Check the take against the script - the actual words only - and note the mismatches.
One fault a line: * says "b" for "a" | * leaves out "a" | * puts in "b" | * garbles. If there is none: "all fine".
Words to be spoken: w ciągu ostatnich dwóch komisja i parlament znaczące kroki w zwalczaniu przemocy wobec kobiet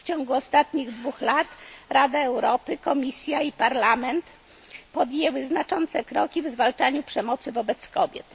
* puts in "lat rada europy"
* puts in "podjęły"